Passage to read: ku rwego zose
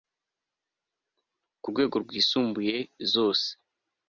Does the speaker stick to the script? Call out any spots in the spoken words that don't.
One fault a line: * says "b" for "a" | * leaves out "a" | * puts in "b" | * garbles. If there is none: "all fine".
* puts in "rwisumbuye"